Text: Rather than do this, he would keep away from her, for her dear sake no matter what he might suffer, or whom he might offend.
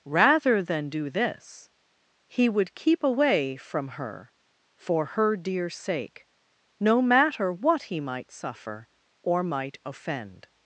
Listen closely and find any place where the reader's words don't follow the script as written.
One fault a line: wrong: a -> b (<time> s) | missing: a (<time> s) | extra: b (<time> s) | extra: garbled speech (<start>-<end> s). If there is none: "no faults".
missing: whom he (9.4 s)